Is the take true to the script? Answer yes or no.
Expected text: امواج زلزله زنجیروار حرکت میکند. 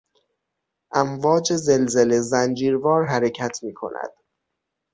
yes